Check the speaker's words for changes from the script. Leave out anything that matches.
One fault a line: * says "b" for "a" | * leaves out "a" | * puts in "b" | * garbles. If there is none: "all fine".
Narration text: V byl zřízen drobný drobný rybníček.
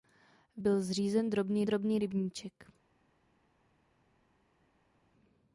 all fine